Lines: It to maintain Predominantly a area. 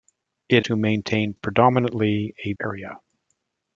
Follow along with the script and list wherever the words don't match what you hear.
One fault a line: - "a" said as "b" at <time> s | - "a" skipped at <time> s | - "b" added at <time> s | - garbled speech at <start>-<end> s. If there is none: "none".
none